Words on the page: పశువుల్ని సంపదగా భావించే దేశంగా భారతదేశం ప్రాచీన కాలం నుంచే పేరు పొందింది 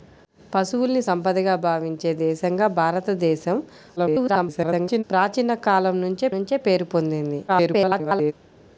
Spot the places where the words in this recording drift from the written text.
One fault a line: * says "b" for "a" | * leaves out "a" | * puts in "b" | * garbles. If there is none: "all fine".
* garbles
* puts in "నుంచే"
* garbles